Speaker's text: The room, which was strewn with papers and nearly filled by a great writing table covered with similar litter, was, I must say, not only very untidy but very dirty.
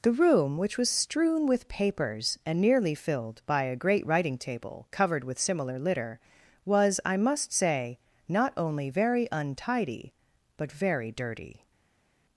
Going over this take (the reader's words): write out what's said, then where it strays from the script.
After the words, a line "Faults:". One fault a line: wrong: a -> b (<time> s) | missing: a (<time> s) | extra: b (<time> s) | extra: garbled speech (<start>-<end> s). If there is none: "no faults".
The room, which was strewn with papers and nearly filled by a great writing table covered with similar litter, was, I must say, not only very untidy but very dirty.
Faults:
no faults